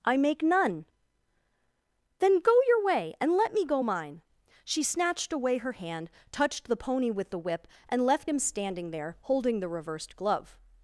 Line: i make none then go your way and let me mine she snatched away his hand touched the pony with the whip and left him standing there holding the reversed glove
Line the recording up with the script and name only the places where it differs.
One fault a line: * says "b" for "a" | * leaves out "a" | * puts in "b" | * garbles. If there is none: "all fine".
* puts in "go"
* says "her" for "his"